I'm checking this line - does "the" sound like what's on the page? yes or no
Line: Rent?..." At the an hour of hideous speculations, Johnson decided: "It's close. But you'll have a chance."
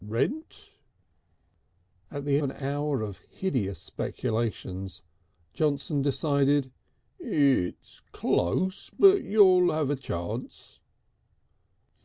yes